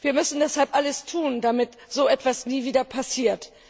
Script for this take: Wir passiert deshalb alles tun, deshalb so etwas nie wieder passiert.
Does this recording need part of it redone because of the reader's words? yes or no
yes